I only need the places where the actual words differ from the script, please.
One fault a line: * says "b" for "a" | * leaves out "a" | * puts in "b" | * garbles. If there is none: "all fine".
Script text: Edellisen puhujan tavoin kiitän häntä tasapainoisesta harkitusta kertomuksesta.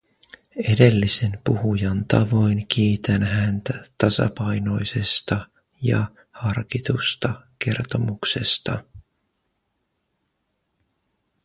* puts in "ja"